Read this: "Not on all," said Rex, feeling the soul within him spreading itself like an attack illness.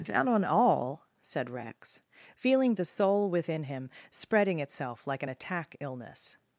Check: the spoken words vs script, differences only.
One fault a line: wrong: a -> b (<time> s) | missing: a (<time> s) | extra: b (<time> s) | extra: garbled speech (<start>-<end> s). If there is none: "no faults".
no faults